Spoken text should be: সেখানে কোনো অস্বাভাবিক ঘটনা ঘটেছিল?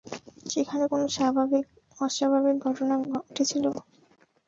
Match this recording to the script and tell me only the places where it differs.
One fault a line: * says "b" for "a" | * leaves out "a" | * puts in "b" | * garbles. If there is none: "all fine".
all fine